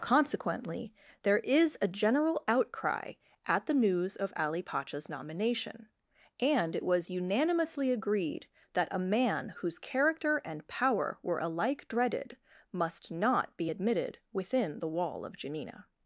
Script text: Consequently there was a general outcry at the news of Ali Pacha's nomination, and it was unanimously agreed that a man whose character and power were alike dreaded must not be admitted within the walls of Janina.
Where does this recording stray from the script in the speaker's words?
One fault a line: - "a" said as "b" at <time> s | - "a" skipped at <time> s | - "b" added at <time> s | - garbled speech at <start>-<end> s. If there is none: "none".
- "was" said as "is" at 1.4 s
- "walls" said as "wall" at 14.9 s